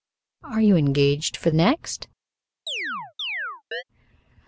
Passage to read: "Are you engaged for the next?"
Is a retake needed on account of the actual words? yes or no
yes